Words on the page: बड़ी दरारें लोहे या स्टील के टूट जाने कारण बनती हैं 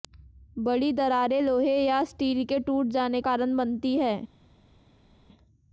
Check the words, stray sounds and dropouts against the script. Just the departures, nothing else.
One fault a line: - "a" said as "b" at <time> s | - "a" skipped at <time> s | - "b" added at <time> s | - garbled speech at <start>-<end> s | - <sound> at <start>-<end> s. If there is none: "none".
none